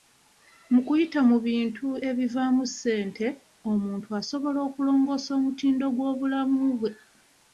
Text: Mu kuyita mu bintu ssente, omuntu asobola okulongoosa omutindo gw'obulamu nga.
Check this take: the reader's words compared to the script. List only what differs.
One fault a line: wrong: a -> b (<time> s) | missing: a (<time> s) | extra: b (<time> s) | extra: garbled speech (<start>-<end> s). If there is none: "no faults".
extra: ebivaamu (2.1 s)
wrong: nga -> bwe (6.8 s)